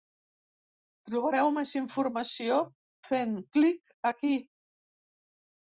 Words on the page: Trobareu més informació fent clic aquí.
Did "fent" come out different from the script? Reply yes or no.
no